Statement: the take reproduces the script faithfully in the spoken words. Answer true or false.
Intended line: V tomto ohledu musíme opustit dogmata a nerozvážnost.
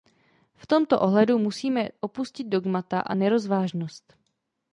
true